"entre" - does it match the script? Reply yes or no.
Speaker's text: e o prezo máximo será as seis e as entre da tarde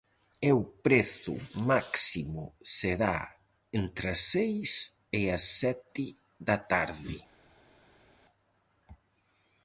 no